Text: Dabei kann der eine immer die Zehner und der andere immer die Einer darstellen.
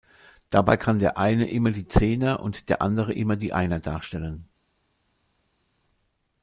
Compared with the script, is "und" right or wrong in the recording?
right